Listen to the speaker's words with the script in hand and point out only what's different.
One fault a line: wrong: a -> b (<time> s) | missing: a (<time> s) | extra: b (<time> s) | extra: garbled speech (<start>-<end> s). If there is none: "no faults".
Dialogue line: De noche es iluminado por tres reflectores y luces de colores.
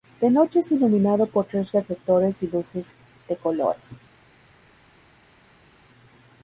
no faults